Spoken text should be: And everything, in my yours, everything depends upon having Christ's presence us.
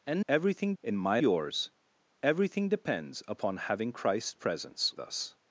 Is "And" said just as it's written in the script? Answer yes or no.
yes